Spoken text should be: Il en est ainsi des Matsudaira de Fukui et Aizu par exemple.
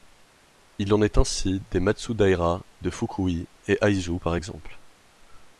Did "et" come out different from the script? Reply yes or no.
no